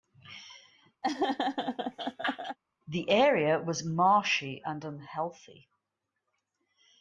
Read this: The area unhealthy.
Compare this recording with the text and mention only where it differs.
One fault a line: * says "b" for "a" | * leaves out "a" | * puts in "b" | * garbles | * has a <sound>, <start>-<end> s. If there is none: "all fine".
* has a laugh, 1.0-2.6 s
* puts in "was marshy and"